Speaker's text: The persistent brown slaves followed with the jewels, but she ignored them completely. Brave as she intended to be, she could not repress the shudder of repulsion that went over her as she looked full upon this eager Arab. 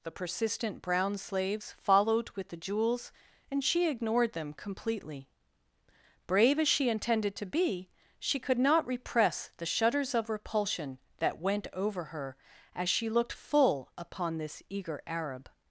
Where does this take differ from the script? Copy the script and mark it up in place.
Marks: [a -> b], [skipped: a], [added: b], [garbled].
The persistent brown slaves followed with the jewels, [but -> and] she ignored them completely. Brave as she intended to be, she could not repress the [shudder -> shudders] of repulsion that went over her as she looked full upon this eager Arab.